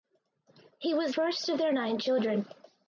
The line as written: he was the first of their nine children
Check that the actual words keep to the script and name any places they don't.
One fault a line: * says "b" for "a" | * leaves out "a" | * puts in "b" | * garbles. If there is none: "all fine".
* leaves out "the"